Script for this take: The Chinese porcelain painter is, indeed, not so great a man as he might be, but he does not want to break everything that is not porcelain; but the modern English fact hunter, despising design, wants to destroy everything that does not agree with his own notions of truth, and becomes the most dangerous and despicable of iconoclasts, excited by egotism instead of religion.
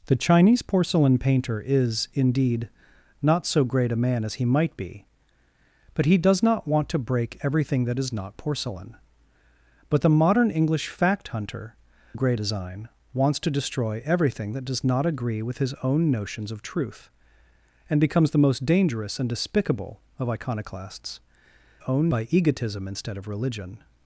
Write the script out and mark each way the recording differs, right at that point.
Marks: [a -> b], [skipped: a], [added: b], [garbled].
The Chinese porcelain painter is, indeed, not so great a man as he might be, but he does not want to break everything that is not porcelain; but the modern English fact hunter, [despising -> great] design, wants to destroy everything that does not agree with his own notions of truth, and becomes the most dangerous and despicable of iconoclasts, [excited -> own] by egotism instead of religion.